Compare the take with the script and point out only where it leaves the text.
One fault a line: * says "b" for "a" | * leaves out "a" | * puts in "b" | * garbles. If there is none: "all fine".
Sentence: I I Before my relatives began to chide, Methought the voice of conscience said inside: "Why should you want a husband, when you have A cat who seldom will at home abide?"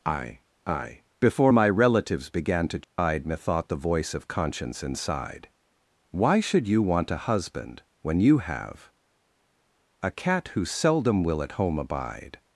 * leaves out "said"